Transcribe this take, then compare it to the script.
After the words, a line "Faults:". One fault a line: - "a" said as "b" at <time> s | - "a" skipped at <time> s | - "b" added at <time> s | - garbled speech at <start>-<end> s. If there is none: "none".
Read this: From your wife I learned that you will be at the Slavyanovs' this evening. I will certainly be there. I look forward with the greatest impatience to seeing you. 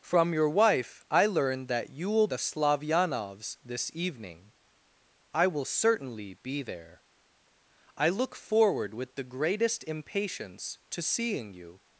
From your wife I learned that you will the Slavyanovs' this evening. I will certainly be there. I look forward with the greatest impatience to seeing you.
Faults:
- "be at" skipped at 2.3 s